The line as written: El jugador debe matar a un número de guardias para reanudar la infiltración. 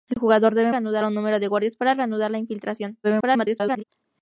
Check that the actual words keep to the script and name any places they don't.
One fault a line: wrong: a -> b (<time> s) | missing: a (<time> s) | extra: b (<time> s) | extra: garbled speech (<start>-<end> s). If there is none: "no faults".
wrong: matar -> reanudar (0.7 s)
extra: garbled speech (3.0-3.8 s)